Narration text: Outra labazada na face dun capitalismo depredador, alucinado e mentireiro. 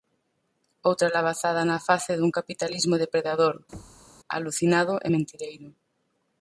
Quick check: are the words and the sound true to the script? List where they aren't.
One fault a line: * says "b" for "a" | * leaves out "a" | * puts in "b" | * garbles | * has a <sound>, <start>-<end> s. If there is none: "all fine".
* has a thud, 3.7-4.1 s